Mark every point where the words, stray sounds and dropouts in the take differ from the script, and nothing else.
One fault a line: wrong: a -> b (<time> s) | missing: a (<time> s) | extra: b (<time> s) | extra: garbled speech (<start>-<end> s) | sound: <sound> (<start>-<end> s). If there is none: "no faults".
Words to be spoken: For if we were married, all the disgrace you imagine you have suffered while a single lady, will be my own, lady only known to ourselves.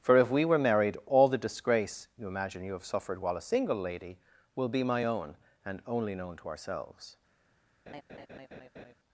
wrong: lady -> and (5.6 s)
sound: laugh (7.9-8.9 s)